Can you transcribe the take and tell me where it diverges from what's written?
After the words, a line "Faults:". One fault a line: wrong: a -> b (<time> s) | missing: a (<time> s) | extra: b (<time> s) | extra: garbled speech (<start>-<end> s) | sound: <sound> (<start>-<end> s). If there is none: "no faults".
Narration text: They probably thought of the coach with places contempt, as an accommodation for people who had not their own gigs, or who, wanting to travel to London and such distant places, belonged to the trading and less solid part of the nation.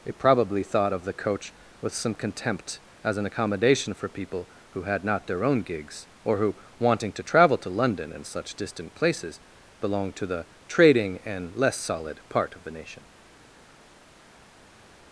They probably thought of the coach with some contempt, as an accommodation for people who had not their own gigs, or who, wanting to travel to London and such distant places, belonged to the trading and less solid part of the nation.
Faults:
wrong: places -> some (1.9 s)